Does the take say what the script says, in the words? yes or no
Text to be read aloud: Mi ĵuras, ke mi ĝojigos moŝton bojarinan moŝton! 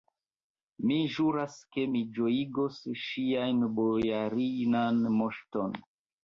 no